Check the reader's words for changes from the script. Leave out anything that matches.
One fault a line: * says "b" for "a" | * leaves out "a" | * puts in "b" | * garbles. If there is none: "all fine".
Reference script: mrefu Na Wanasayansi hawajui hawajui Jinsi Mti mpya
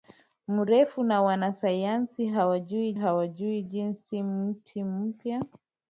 all fine